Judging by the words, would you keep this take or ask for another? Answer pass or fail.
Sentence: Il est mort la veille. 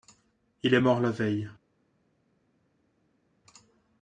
pass